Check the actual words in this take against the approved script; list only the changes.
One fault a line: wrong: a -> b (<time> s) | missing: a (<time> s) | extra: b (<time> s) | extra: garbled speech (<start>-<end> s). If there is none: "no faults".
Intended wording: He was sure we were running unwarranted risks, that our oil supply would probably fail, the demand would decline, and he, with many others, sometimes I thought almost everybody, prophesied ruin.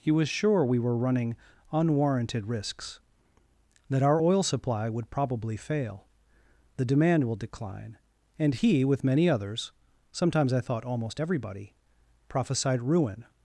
wrong: would -> will (7.2 s)